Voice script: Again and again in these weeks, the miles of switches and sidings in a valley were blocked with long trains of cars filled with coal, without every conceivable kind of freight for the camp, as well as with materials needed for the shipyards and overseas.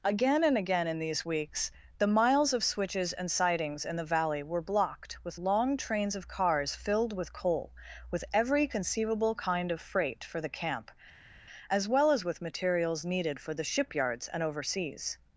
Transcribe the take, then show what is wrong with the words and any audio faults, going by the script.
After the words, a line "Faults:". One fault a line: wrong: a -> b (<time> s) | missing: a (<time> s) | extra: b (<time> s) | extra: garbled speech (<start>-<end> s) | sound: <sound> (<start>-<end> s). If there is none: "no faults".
Again and again in these weeks, the miles of switches and sidings in the valley were blocked with long trains of cars filled with coal, with every conceivable kind of freight for the camp, as well as with materials needed for the shipyards and overseas.
Faults:
wrong: a -> the (4.0 s)
wrong: without -> with (8.1 s)